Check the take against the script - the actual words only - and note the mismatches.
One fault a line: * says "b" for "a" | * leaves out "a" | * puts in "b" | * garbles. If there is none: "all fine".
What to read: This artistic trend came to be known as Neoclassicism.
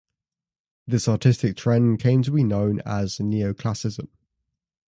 all fine